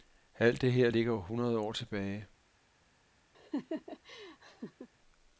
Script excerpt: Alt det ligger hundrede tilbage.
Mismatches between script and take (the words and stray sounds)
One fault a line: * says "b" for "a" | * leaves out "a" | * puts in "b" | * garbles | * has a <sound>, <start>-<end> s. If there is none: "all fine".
* puts in "her"
* puts in "år"
* has a laugh, 3.3-4.9 s